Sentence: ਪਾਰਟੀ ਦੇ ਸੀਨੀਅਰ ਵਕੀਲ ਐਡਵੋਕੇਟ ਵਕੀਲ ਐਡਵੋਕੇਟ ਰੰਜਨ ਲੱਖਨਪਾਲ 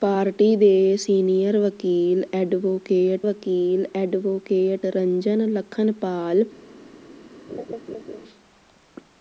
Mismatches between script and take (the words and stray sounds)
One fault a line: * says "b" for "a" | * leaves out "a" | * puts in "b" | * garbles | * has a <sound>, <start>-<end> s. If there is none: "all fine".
* has a laugh, 7.5-8.2 s